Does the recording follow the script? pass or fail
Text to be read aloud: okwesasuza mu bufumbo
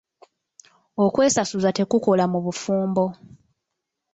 fail